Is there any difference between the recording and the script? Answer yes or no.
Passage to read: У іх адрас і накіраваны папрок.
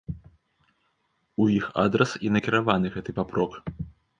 yes